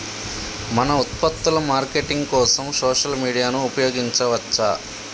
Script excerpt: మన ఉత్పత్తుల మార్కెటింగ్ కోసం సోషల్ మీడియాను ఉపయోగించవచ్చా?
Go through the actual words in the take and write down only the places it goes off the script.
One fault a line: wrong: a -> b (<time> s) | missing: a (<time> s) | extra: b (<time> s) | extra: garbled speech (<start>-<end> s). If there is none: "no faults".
no faults